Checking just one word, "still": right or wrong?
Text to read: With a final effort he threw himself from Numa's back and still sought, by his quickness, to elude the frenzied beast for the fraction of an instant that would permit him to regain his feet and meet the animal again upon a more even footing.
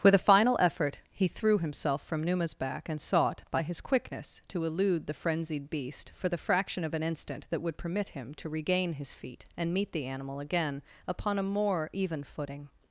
wrong